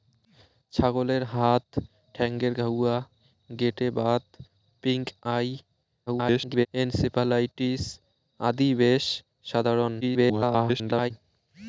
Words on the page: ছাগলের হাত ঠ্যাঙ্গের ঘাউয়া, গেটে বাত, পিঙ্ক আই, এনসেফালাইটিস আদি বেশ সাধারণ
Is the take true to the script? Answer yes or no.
no